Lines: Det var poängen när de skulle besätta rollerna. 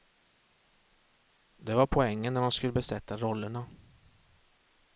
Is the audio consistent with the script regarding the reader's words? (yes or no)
yes